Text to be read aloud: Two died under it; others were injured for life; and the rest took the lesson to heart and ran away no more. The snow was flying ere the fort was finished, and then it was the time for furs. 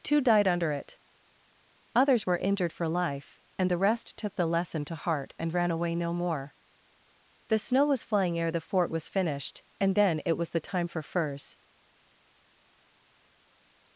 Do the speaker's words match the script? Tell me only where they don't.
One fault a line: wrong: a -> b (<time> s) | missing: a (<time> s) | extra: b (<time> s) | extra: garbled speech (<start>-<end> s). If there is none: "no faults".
no faults